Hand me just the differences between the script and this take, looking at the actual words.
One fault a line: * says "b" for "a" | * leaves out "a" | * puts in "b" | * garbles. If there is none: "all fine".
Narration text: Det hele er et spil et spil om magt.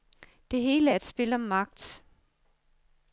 * leaves out "et spil"